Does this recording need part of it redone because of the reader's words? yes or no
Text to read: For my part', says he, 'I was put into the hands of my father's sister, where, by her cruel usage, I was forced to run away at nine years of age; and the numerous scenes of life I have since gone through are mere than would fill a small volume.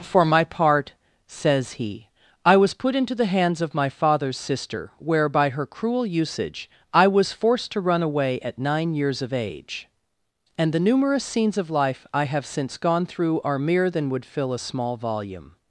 no